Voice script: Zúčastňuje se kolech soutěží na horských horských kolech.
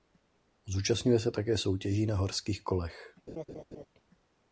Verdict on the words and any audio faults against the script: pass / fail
fail